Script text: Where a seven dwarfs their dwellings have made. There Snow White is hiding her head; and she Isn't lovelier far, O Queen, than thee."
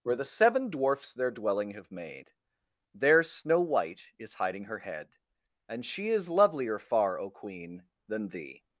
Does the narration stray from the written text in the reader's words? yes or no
yes